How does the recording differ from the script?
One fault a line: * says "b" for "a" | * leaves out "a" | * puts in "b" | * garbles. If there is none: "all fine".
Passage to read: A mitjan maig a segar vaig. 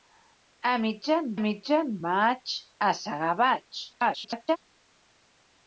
* puts in "mitjan"
* garbles